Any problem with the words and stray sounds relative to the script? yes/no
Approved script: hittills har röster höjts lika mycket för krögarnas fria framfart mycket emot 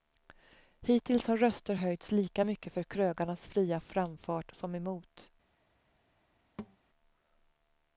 yes